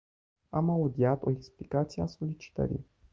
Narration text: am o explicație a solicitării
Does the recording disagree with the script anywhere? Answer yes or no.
yes